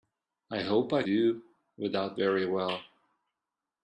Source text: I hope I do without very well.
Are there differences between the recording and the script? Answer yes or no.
no